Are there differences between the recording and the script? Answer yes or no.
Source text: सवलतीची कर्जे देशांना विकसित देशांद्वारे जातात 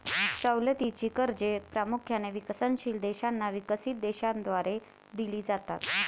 yes